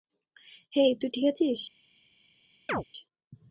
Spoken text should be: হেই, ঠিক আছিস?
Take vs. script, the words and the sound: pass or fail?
fail